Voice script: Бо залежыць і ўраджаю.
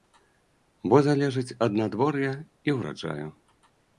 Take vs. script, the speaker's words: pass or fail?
fail